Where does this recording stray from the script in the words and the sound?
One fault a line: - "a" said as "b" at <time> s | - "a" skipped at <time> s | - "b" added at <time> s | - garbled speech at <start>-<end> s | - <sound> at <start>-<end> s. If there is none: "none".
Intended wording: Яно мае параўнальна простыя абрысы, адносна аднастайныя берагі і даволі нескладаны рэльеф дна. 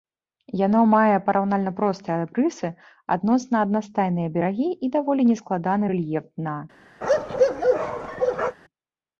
- bark at 7.0-8.6 s